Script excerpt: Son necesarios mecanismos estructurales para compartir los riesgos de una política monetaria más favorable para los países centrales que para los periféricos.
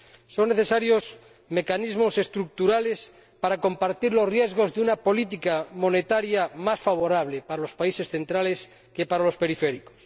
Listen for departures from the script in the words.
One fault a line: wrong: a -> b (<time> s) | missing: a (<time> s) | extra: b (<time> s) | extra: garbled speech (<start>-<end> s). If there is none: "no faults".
no faults